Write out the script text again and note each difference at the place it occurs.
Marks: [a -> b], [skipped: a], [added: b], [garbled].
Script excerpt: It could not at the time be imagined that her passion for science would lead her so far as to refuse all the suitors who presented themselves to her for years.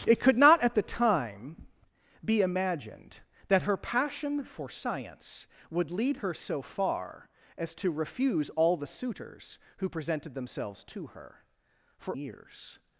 It could not at the time be imagined that her passion for science would lead her so far as to refuse all the suitors who presented themselves to her for years.